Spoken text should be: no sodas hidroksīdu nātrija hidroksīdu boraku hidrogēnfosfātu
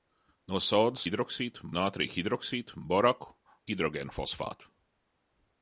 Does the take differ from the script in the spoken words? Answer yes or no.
no